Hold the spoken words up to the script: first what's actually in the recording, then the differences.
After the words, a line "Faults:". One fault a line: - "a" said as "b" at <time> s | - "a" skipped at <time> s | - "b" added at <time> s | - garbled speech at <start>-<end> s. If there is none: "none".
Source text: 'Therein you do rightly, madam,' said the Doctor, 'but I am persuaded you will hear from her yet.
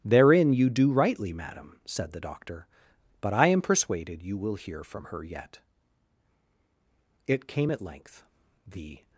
'Therein you do rightly, madam,' said the Doctor, 'but I am persuaded you will hear from her yet. It came at length, the
Faults:
- "It came at length the" added at 7.3 s